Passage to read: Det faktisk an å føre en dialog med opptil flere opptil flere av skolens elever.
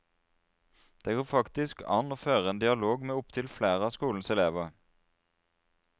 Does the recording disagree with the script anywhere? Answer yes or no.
yes